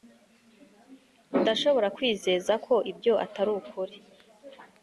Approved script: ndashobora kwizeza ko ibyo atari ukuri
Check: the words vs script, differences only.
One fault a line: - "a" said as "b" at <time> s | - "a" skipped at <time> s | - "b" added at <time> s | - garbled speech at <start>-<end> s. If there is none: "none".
none